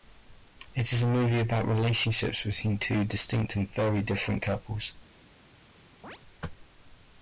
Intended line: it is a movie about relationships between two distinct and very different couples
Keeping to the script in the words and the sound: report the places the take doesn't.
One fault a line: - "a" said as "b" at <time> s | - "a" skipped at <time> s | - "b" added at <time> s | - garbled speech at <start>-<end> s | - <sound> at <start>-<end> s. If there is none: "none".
- chirp at 6.0-6.2 s